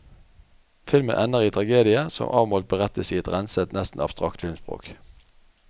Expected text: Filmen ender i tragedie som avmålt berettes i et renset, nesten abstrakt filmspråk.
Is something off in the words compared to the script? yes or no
no